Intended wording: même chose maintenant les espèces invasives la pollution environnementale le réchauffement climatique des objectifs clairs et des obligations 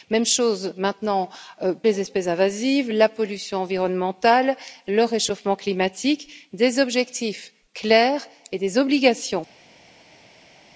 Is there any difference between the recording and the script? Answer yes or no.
no